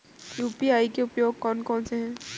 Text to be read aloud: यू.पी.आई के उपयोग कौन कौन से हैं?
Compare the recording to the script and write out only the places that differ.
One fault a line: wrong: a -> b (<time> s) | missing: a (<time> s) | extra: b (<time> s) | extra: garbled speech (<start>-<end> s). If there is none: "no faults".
no faults